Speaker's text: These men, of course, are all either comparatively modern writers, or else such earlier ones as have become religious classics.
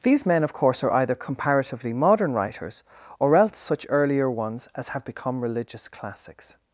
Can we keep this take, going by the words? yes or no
no